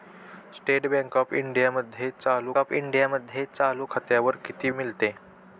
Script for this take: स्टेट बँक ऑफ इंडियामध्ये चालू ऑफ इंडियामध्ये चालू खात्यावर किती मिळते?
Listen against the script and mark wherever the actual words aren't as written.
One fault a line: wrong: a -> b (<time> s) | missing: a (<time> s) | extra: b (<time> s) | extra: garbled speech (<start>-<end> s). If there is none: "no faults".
no faults